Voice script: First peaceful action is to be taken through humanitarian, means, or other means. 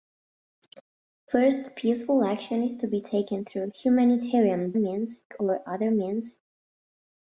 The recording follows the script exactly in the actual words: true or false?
true